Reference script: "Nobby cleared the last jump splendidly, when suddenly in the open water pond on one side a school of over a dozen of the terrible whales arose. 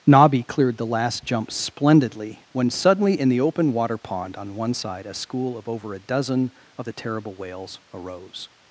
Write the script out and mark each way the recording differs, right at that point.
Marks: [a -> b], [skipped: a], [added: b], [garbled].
"Nobby cleared the last jump splendidly, when suddenly in the open water pond on one side a school of over a dozen of the terrible whales arose.